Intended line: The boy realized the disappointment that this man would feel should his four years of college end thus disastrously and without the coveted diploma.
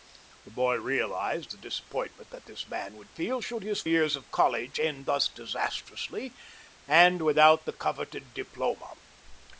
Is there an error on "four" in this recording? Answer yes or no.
yes